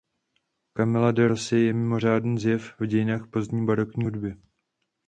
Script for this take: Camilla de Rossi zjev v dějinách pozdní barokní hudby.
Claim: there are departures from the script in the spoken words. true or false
true